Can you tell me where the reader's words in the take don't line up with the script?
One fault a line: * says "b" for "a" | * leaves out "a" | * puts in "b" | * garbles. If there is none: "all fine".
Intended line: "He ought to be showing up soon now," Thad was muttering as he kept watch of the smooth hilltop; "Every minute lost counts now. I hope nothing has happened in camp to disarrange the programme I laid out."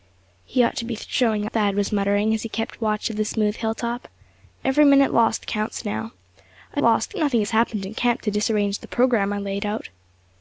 * leaves out "up soon now"
* says "lost" for "hope"